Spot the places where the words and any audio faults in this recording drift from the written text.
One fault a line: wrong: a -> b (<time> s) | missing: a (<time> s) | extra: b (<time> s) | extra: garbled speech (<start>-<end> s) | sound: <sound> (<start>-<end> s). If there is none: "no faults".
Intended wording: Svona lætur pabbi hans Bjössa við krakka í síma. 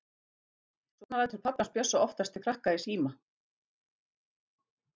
extra: oftast (2.1 s)